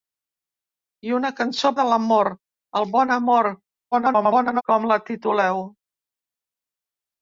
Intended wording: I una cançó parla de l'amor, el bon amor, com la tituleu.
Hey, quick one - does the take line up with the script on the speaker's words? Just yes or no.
no